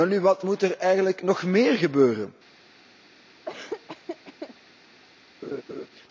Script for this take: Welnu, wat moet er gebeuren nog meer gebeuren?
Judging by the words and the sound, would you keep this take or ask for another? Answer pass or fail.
fail